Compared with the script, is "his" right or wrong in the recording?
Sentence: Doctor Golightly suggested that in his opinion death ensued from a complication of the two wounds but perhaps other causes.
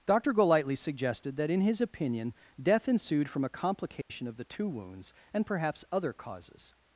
right